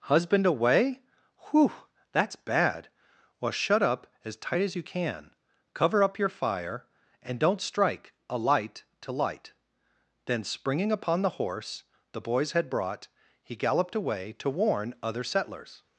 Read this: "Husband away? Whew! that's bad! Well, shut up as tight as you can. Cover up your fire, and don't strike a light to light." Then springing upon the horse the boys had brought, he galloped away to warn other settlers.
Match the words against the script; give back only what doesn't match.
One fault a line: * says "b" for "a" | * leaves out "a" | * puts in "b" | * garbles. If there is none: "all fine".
all fine